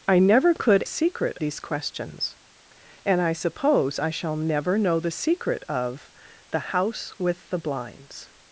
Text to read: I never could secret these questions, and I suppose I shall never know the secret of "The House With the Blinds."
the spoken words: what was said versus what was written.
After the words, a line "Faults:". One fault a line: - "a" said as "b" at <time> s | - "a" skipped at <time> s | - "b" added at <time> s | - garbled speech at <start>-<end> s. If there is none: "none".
I never could secret these questions, and I suppose I shall never know the secret of "The House With the Blinds."
Faults:
none